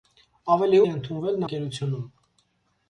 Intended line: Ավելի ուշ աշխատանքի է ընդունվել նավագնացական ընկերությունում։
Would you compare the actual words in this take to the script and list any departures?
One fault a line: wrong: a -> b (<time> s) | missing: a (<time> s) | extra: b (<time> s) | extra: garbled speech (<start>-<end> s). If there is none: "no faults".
missing: ուշ աշխատանքի (0.8 s)
missing: նավագնացական (1.4 s)